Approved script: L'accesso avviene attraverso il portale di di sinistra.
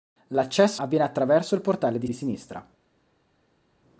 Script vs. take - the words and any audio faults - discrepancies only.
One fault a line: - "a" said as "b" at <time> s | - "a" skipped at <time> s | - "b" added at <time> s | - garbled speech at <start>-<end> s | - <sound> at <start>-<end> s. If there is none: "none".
none